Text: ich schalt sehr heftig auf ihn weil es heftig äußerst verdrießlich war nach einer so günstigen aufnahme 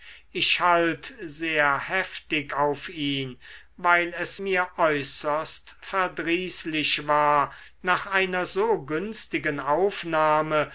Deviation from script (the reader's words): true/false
true